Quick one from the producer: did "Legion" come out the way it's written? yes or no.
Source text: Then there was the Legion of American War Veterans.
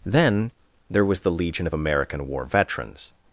yes